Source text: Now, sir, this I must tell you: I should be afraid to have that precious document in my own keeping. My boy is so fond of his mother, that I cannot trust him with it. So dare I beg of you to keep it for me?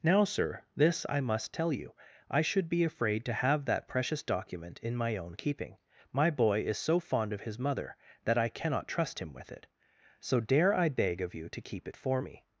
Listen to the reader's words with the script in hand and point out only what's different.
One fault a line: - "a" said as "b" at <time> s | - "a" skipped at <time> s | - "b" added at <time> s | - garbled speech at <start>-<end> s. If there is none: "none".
none